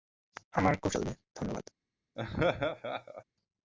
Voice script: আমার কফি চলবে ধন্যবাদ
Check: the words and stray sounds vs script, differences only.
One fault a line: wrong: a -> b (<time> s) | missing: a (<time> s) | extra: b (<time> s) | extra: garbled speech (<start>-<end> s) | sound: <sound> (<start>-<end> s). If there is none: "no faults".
sound: laugh (2.2-3.2 s)